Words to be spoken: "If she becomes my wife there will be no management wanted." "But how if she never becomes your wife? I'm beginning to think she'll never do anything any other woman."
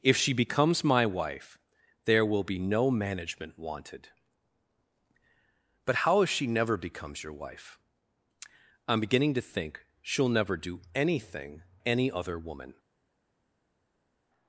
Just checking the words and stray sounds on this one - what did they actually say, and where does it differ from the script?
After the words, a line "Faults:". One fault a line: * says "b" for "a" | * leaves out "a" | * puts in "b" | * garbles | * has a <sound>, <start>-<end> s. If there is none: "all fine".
"If she becomes my wife there will be no management wanted." "But how if she never becomes your wife? I'm beginning to think she'll never do anything any other woman."
Faults:
all fine